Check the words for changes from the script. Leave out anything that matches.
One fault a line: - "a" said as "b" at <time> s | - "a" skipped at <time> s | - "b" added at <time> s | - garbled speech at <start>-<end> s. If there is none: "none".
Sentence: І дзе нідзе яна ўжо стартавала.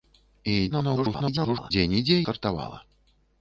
- garbled speech at 0.7-1.7 s
- "яна ўжо" skipped at 2.2 s